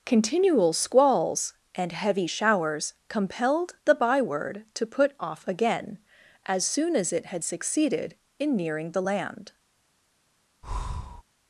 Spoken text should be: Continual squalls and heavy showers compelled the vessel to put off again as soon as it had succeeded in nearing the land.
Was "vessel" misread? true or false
true